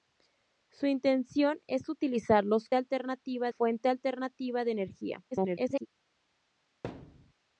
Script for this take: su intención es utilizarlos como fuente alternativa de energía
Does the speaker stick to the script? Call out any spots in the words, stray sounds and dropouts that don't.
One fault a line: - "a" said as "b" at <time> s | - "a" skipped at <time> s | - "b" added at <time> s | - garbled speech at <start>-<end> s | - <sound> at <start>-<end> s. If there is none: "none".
- "como" said as "alternativa" at 2.7 s
- garbled speech at 5.3-5.9 s
- thud at 6.8-7.3 s